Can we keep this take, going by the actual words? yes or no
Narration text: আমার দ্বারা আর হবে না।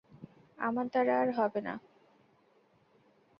yes